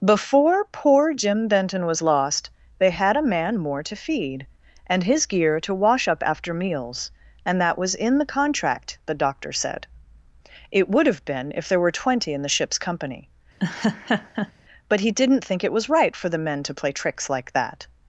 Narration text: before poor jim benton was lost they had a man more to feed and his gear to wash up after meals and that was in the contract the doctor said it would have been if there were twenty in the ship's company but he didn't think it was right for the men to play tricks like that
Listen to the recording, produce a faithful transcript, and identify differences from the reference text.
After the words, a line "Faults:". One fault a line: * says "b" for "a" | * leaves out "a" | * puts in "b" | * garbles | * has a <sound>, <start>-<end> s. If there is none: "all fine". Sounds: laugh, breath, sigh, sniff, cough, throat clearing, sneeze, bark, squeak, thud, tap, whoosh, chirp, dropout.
before poor jim benton was lost they had a man more to feed and his gear to wash up after meals and that was in the contract the doctor said it would have been if there were twenty in the ship's company but he didn't think it was right for the men to play tricks like that
Faults:
* has a laugh, 13.6-14.5 s